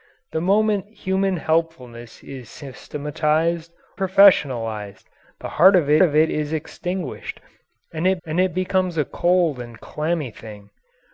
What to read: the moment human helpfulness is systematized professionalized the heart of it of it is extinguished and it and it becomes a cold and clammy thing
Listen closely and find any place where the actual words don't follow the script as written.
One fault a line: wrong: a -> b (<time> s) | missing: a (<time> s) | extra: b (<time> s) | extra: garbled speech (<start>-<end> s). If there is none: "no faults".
no faults